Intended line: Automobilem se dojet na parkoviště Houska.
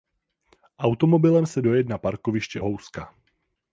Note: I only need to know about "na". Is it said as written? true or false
true